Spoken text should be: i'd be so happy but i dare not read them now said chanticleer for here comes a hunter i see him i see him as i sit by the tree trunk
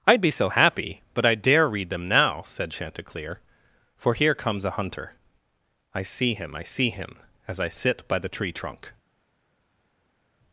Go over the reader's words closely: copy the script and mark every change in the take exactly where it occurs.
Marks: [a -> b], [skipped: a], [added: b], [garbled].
i'd be so happy but i dare [skipped: not] read them now said chanticleer for here comes a hunter i see him i see him as i sit by the tree trunk